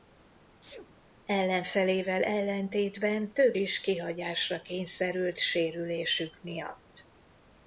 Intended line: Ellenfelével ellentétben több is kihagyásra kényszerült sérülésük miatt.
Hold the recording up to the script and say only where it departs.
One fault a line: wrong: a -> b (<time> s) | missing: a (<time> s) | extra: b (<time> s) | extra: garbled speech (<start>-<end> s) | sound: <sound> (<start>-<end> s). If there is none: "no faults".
sound: sneeze (0.6-1.1 s)